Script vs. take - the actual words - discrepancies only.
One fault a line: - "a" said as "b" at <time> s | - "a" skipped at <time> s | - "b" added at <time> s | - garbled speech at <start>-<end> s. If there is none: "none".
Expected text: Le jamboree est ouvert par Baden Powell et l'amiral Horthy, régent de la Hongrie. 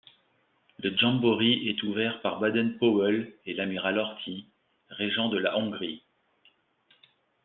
none